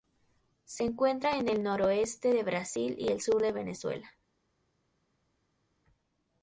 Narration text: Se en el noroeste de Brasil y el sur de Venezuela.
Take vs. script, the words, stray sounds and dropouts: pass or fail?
fail